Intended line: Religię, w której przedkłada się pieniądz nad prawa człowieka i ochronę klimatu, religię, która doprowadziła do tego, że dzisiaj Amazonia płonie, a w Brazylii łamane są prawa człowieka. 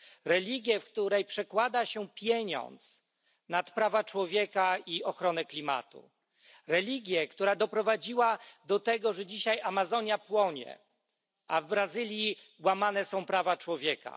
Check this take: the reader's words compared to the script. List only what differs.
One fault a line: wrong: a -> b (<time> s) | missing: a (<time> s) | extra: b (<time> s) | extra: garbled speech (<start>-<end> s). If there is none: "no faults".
no faults